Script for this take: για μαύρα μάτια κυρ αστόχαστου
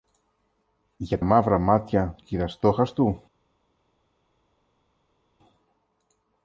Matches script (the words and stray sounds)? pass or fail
pass